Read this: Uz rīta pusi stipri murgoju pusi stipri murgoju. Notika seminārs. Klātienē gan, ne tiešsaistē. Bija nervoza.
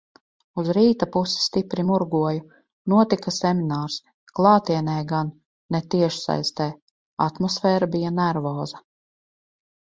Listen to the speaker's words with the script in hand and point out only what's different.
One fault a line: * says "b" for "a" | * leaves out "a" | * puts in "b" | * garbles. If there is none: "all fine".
* leaves out "pusi stipri murgoju"
* puts in "Atmosfēra"